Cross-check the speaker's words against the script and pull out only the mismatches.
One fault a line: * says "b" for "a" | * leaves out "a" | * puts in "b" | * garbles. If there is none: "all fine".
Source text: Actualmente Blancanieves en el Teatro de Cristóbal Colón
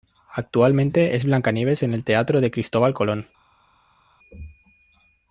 * puts in "es"